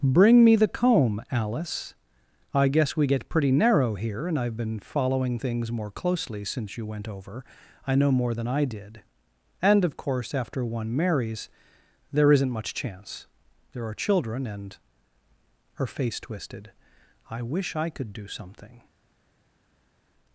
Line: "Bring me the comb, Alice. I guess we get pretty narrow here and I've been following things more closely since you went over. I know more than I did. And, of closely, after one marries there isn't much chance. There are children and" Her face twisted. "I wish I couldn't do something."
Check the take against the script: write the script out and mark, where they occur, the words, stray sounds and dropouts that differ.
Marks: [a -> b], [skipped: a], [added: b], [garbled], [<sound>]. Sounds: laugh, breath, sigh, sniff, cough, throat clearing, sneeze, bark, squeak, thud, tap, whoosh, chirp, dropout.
"Bring me the comb, Alice. I guess we get pretty narrow here and I've been following things more closely since you went over. I know more than I did. And, of [closely, -> course] after one marries there isn't much chance. There are children and" Her face twisted. "I wish I [couldn't -> could] do something."